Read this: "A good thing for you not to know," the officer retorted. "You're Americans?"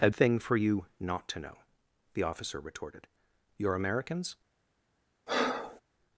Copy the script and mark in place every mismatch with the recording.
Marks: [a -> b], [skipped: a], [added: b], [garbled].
"A [skipped: good] thing for you not to know," the officer retorted. "You're Americans?"